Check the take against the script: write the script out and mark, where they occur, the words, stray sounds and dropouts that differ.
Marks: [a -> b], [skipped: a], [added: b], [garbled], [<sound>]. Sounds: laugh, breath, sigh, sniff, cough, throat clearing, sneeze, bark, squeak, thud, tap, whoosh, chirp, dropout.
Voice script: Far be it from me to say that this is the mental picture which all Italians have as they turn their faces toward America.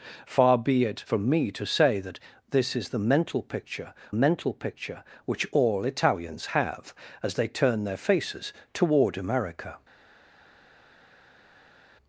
Far be it from me to say that this is the mental picture [added: mental picture] which all Italians have as they turn their faces toward America.